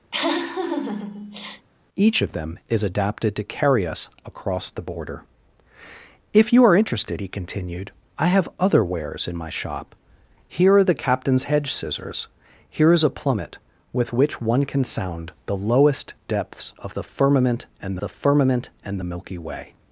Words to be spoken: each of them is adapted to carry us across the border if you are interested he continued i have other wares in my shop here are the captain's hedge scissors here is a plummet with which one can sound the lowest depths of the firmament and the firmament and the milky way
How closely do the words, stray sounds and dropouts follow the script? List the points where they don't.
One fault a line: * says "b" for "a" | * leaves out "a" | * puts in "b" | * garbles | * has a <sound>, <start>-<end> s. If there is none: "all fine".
* has a laugh, 0.1-1.7 s